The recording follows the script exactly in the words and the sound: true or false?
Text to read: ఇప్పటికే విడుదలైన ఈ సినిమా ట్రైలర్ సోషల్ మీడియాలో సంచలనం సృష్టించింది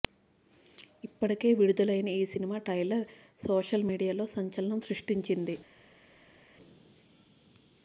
true